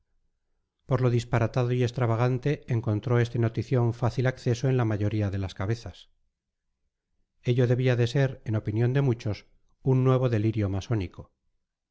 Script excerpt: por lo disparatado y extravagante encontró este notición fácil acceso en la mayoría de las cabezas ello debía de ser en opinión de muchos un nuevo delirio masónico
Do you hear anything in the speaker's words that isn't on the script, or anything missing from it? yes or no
no